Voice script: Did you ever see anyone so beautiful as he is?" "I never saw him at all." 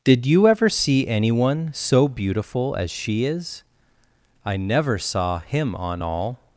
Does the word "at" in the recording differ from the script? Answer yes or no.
yes